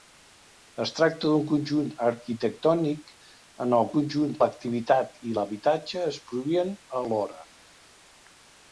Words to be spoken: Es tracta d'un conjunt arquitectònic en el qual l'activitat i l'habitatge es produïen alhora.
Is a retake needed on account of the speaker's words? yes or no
yes